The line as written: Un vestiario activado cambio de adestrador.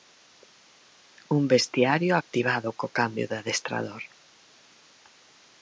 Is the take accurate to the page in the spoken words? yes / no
no